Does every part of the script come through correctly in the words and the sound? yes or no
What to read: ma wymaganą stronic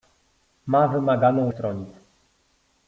yes